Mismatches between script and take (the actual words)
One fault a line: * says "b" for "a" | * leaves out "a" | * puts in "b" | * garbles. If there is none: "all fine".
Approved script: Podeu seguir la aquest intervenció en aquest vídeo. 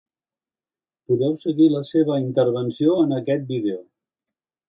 * says "seva" for "aquest"